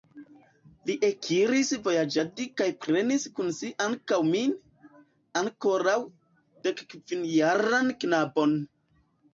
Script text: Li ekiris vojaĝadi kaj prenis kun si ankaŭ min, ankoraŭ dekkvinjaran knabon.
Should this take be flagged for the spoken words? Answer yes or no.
no